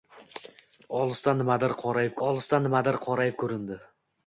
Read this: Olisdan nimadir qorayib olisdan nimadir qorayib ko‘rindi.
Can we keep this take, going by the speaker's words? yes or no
yes